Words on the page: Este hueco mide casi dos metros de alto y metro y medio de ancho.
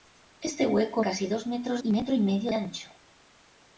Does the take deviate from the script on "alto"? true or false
true